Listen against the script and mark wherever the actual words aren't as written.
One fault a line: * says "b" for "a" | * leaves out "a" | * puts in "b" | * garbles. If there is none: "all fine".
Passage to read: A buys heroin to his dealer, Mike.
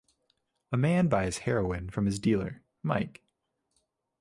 * puts in "man"
* says "from" for "to"